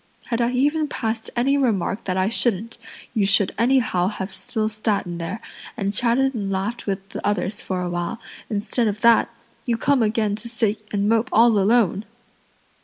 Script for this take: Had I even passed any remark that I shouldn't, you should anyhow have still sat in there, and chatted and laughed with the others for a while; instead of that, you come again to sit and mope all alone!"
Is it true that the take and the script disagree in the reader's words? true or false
false